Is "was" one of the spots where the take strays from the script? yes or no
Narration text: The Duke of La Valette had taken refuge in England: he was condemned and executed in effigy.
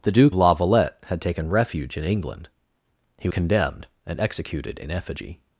yes